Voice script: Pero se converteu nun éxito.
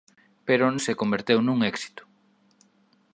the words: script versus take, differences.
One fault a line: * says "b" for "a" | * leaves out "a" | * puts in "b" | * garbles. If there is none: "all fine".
all fine